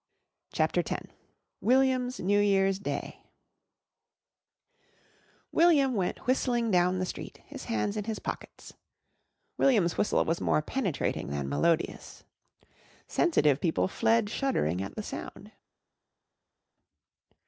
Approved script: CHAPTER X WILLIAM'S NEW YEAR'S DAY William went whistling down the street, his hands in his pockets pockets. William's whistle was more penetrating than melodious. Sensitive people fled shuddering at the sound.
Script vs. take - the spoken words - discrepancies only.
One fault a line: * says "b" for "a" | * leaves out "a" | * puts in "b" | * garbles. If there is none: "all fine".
* leaves out "pockets"